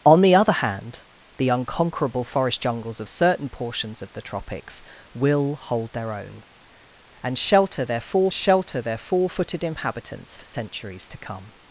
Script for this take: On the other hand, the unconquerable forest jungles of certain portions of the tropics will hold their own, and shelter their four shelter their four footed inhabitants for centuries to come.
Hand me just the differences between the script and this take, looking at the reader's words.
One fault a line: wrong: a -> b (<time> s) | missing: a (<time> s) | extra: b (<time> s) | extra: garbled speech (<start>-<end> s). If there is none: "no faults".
no faults